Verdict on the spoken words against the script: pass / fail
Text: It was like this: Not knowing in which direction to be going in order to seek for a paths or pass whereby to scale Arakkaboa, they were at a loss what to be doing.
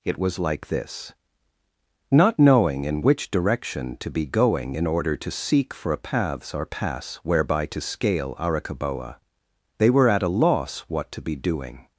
pass